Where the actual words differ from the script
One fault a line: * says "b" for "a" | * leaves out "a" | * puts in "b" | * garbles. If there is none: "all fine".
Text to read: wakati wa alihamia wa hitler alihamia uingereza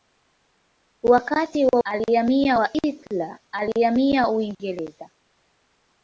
all fine